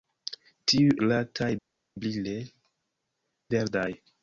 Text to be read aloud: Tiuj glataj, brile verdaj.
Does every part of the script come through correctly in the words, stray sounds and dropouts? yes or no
yes